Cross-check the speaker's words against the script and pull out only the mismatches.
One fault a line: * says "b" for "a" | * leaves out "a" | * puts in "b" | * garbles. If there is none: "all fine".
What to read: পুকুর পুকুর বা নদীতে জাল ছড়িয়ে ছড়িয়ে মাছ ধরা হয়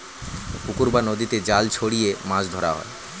* leaves out "পুকুর"
* leaves out "ছড়িয়ে"